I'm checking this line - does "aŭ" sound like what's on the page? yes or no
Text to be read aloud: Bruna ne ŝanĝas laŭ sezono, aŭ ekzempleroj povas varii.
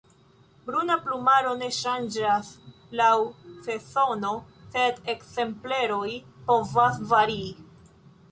no